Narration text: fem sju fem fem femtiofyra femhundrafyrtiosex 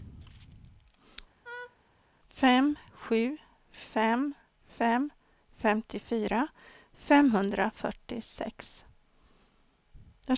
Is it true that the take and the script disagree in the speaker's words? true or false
false